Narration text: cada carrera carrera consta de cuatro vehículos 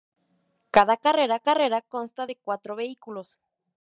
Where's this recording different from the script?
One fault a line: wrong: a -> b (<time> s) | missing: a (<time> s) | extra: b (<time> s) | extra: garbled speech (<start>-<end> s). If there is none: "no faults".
no faults